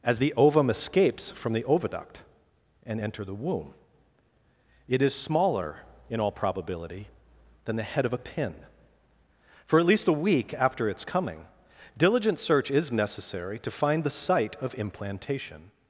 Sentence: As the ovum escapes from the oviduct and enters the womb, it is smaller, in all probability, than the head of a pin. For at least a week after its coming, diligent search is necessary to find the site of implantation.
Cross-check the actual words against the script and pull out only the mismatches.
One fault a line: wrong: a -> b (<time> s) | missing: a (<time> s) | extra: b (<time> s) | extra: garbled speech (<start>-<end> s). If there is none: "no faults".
wrong: enters -> enter (3.0 s)